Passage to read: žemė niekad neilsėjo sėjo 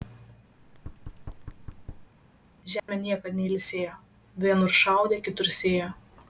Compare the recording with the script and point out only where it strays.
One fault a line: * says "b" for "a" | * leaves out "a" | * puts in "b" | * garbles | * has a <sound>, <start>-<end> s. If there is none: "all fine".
* has a thud, 0.6-2.1 s
* has a dropout, 2.8-2.9 s
* puts in "vienur šaudė kitur"